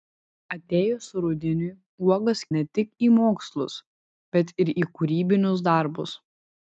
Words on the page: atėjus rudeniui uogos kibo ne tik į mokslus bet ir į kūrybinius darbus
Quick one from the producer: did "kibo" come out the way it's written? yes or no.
no